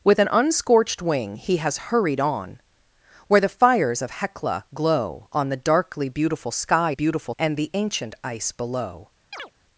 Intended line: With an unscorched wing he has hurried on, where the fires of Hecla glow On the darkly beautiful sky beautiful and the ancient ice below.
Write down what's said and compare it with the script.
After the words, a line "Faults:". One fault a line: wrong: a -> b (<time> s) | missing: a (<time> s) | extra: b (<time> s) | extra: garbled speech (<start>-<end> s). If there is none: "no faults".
With an unscorched wing he has hurried on, where the fires of Hecla glow On the darkly beautiful sky beautiful and the ancient ice below.
Faults:
no faults